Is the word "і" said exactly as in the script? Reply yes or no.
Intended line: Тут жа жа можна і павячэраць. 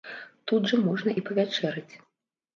yes